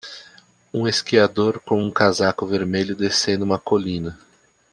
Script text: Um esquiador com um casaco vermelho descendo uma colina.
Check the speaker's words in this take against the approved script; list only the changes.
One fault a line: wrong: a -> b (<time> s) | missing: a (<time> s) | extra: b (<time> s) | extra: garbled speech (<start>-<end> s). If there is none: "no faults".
no faults